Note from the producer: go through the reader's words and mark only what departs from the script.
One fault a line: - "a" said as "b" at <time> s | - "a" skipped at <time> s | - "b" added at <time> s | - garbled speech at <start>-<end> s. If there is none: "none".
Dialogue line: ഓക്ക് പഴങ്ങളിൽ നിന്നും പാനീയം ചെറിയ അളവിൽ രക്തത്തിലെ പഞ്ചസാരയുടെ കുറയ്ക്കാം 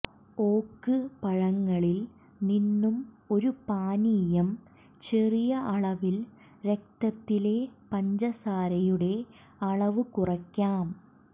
- "ഒരു" added at 3.3 s
- "അളവ്" added at 9.7 s